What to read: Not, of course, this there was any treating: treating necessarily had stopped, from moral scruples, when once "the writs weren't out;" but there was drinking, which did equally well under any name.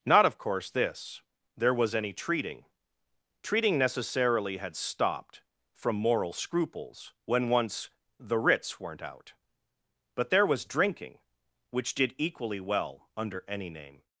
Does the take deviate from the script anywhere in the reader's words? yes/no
no